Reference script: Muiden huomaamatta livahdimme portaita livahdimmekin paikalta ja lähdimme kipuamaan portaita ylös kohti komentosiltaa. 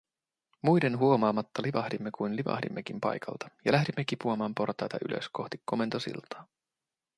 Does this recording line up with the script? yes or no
no